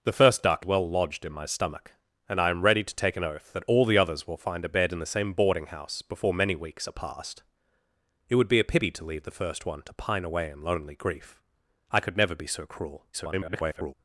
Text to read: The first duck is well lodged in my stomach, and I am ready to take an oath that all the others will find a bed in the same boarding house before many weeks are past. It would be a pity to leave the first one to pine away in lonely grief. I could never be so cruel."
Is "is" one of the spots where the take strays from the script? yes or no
yes